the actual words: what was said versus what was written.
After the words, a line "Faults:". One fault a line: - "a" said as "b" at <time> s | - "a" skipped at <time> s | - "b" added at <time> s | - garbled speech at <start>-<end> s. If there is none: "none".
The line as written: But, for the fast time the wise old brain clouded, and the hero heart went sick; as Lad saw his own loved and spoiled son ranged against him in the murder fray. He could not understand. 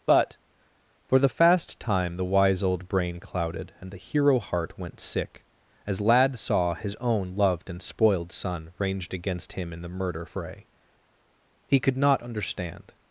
But, for the fast time the wise old brain clouded, and the hero heart went sick; as Lad saw his own loved and spoiled son ranged against him in the murder fray. He could not understand.
Faults:
none